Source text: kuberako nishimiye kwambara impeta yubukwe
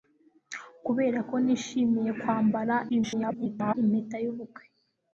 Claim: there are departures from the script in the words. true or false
true